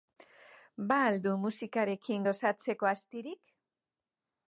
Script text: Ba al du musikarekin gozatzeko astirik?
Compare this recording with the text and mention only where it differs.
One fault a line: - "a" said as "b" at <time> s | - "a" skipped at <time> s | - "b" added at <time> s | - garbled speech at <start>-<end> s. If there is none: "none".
none